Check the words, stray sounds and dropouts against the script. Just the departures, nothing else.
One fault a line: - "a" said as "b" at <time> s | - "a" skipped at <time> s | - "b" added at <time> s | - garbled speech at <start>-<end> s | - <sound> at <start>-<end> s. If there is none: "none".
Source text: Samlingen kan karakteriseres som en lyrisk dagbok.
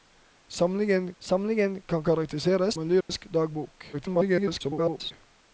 - "samlingen" added at 1.2 s
- "som" skipped at 2.7 s
- dropout at 3.0-3.1 s
- garbled speech at 3.9-5.1 s